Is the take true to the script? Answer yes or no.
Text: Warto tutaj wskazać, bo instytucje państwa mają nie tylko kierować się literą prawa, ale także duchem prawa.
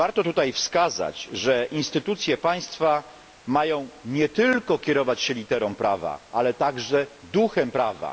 no